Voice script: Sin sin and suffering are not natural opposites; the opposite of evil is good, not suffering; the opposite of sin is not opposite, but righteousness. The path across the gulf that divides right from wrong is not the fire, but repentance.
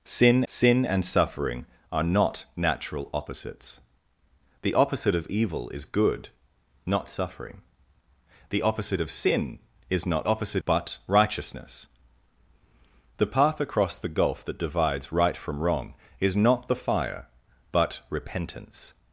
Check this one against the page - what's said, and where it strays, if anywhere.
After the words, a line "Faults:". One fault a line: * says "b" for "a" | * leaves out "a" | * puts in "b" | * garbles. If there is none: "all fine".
Sin sin and suffering are not natural opposites; the opposite of evil is good, not suffering; the opposite of sin is not opposite, but righteousness. The path across the gulf that divides right from wrong is not the fire, but repentance.
Faults:
all fine